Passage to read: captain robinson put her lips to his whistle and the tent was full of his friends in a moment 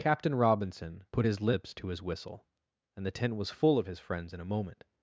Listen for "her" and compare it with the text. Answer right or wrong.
wrong